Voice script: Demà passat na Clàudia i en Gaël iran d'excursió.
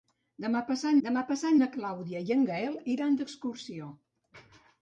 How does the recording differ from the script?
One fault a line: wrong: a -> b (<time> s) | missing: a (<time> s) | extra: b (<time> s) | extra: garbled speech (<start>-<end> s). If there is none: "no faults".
extra: demà passat (1.1 s)